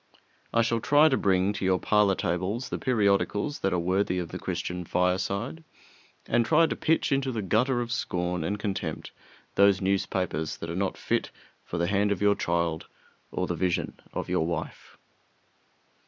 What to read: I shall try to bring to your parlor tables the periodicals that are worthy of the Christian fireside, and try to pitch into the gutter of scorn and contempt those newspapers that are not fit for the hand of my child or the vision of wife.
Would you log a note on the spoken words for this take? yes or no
yes